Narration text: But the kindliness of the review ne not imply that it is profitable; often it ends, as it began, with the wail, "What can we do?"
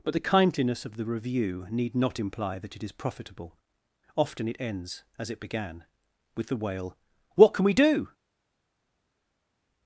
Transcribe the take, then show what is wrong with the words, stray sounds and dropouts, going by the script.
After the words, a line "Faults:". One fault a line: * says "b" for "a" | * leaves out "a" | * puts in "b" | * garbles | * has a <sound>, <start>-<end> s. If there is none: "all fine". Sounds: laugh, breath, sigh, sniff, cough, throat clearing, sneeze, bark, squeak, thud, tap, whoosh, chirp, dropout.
But the kindliness of the review need not imply that it is profitable; often it ends, as it began, with the wail, "What can we do?"
Faults:
* says "need" for "ne"